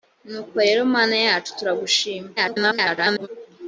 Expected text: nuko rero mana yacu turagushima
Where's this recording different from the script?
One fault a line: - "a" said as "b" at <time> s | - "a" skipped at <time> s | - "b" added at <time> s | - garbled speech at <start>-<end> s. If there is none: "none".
- garbled speech at 2.4-3.3 s